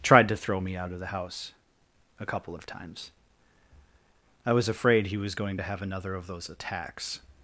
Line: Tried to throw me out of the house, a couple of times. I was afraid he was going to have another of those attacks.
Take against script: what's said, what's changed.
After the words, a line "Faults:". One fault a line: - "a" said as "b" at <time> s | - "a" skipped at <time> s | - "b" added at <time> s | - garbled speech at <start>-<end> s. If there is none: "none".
Tried to throw me out of the house, a couple of times. I was afraid he was going to have another of those attacks.
Faults:
none